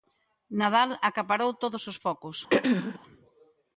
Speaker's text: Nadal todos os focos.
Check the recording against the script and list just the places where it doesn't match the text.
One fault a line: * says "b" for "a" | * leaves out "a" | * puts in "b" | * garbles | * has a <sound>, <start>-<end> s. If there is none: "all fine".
* puts in "acaparou"
* has a throat clearing, 2.5-3.0 s